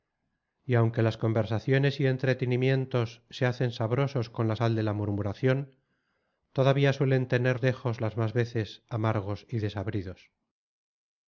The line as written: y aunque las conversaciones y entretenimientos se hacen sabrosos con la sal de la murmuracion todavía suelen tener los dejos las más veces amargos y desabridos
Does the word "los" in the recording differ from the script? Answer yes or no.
yes